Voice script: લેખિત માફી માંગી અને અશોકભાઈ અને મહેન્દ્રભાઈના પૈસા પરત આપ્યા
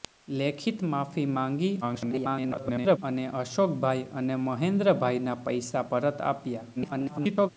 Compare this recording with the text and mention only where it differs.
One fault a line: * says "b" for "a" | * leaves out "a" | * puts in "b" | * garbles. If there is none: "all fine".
* garbles
* garbles